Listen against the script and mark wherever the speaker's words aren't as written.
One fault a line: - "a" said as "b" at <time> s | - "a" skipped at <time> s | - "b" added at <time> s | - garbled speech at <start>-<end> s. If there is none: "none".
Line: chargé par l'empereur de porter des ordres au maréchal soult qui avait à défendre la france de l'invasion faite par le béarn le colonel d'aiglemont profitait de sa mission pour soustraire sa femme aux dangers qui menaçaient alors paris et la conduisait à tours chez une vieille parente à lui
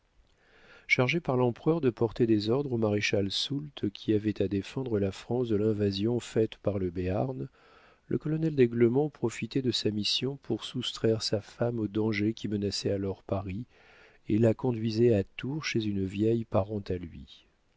none